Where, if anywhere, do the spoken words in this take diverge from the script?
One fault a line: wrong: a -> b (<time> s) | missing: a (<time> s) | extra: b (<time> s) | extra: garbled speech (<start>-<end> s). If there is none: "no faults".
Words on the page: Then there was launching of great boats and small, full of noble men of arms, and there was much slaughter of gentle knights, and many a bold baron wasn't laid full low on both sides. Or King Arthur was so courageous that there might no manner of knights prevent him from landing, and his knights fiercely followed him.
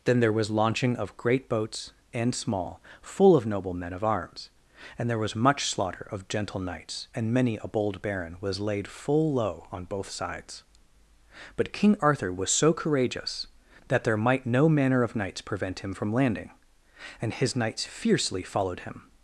wrong: wasn't -> was (8.4 s)
wrong: Or -> But (11.6 s)